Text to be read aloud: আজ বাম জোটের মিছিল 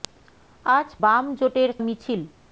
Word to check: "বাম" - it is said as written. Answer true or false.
true